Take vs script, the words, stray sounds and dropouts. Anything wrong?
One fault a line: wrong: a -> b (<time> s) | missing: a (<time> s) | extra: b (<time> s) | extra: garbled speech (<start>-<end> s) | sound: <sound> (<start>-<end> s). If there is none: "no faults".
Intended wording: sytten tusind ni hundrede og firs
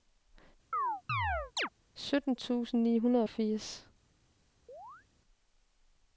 sound: chirp (0.7-1.7 s)
sound: chirp (4.7-5.1 s)